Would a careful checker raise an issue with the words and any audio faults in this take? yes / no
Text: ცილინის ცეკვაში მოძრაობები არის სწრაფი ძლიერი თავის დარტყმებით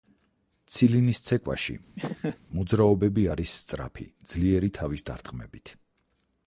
yes